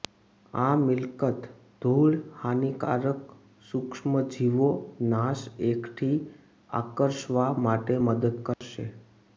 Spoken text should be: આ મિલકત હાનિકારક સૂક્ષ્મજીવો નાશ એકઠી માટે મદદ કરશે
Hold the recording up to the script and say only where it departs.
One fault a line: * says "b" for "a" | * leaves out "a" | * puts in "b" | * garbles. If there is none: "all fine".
* puts in "ધૂળ"
* puts in "આકર્ષવા"